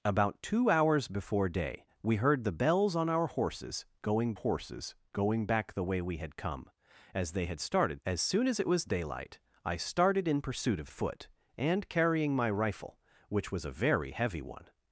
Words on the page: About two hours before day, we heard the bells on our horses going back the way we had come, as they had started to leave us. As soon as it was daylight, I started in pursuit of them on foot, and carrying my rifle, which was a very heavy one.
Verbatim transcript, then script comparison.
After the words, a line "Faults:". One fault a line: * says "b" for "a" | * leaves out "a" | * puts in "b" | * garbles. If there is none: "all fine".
About two hours before day, we heard the bells on our horses going horses going back the way we had come, as they had started. As soon as it was daylight, I started in pursuit of foot, and carrying my rifle, which was a very heavy one.
Faults:
* puts in "horses going"
* leaves out "to leave us"
* leaves out "them on"